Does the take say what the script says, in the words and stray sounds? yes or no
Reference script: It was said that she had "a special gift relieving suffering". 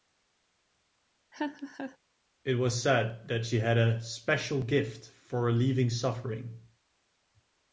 no